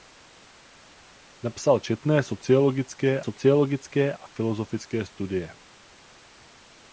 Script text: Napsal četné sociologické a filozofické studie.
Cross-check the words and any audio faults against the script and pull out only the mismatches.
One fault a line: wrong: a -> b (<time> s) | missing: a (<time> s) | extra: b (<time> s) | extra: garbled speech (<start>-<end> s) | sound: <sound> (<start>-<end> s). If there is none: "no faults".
extra: sociologické (3.2 s)